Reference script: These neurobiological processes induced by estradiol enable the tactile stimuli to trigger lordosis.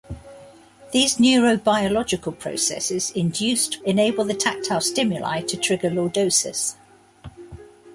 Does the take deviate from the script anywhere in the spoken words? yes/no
yes